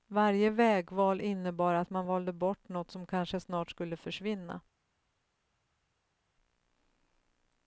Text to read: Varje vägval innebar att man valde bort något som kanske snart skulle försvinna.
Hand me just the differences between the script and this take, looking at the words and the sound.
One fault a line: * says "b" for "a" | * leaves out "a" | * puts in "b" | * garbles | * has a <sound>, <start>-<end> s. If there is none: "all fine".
all fine